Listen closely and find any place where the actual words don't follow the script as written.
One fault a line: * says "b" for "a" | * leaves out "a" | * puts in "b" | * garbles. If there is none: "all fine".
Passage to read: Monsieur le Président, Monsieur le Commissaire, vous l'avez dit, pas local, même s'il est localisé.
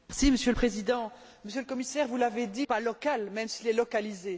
all fine